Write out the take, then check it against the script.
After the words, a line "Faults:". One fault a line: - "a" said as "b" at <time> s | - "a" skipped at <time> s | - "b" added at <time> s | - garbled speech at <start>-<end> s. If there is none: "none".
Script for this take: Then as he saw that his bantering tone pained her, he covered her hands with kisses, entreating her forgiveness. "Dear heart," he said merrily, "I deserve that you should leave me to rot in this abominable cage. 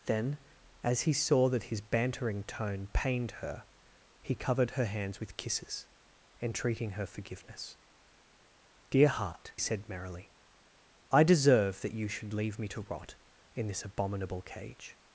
Then as he saw that his bantering tone pained her, he covered her hands with kisses, entreating her forgiveness. "Dear heart," said merrily, "I deserve that you should leave me to rot in this abominable cage.
Faults:
- "he" skipped at 9.5 s